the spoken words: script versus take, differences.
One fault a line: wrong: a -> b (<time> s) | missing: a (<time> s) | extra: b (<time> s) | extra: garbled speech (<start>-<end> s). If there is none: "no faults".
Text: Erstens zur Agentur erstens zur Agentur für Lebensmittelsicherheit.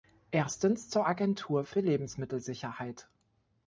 missing: erstens zur Agentur (1.6 s)